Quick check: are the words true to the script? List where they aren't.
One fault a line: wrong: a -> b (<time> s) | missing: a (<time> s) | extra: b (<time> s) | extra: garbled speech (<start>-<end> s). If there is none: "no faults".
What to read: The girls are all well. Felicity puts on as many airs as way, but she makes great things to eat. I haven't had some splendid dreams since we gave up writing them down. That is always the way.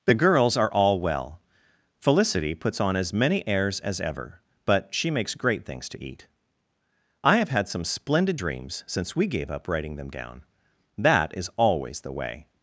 wrong: way -> ever (4.0 s)
wrong: haven't -> have (7.4 s)